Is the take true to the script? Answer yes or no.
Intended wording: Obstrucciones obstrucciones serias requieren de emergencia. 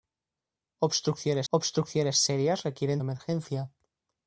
yes